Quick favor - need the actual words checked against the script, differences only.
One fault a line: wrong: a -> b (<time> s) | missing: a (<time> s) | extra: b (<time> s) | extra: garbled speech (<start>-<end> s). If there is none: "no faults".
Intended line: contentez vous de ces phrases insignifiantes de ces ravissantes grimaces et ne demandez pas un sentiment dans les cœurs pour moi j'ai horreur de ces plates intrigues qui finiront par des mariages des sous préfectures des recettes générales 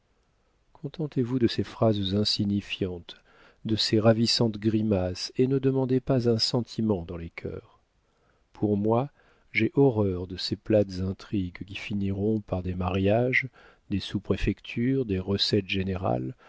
no faults